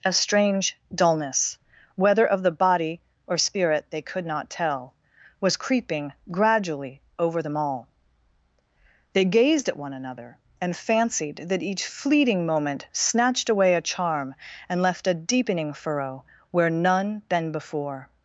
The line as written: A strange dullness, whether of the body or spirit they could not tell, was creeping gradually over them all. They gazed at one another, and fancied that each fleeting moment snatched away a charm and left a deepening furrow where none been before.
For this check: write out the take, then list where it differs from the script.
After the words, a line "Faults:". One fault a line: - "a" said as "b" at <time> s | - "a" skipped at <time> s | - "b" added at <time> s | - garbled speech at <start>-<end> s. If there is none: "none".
A strange dullness, whether of the body or spirit they could not tell, was creeping gradually over them all. They gazed at one another, and fancied that each fleeting moment snatched away a charm and left a deepening furrow where none been before.
Faults:
none